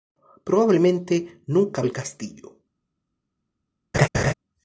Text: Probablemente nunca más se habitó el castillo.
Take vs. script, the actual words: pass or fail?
fail